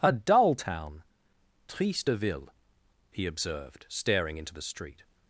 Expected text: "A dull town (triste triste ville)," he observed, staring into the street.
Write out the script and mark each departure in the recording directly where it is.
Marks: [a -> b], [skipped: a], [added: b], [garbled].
"A dull town (triste [skipped: triste] ville)," he observed, staring into the street.